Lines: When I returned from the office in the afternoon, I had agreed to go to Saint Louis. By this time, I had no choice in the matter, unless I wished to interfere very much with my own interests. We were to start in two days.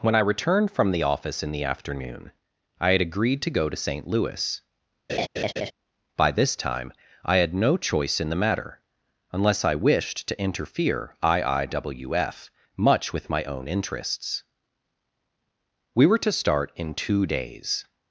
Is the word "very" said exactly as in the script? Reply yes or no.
no